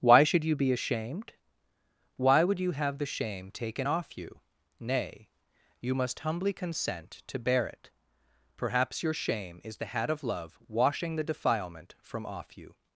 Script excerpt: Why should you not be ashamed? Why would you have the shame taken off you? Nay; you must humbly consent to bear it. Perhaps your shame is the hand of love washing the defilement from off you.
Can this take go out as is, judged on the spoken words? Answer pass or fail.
fail